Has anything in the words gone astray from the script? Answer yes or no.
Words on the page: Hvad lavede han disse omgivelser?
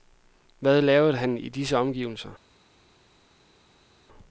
yes